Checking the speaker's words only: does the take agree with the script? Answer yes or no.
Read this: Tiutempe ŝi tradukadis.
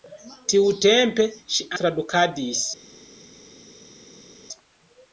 yes